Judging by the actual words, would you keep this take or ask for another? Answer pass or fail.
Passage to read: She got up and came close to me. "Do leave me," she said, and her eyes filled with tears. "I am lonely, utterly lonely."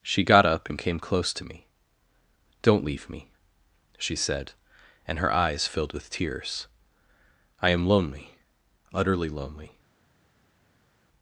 fail